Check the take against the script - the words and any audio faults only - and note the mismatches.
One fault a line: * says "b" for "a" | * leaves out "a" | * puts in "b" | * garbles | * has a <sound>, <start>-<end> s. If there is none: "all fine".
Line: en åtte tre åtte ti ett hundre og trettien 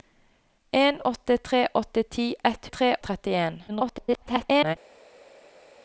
* says "tre" for "hundre"
* garbles